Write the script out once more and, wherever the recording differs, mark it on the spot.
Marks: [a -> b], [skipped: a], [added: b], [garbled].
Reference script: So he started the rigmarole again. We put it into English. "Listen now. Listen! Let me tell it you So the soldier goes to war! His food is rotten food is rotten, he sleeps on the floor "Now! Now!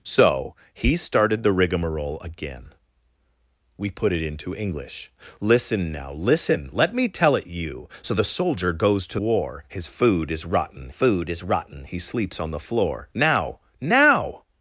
So he started the rigmarole again. We put it into English. "Listen now. Listen! Let me tell it you So the soldier goes to war! His food is rotten food is rotten, he sleeps on the floor "Now! Now!